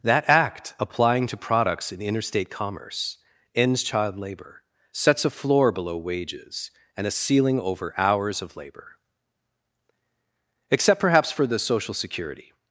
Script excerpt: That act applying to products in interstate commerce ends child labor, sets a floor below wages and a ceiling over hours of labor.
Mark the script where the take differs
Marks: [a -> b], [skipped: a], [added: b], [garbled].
That act applying to products in interstate commerce ends child labor, sets a floor below wages and a ceiling over hours of labor. [added: Except perhaps for the Social Security]